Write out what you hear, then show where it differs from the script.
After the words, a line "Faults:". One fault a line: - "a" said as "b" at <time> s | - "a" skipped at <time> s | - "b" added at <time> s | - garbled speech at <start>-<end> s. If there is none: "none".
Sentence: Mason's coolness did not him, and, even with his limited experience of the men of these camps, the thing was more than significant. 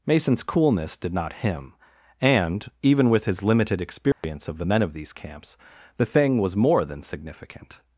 Mason's coolness did not him, and, even with his limited experience of the men of these camps, the thing was more than significant.
Faults:
none